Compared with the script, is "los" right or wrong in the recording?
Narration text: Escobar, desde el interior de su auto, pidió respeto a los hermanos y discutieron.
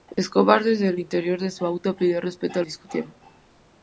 wrong